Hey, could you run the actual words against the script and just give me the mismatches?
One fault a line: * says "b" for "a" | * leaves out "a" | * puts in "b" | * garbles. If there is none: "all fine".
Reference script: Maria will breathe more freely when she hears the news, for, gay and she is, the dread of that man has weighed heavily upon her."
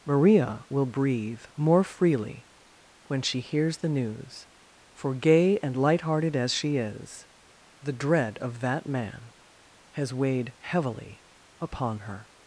* puts in "light hearted as"